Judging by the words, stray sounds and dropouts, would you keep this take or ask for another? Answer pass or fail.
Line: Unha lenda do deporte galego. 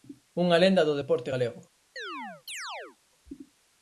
fail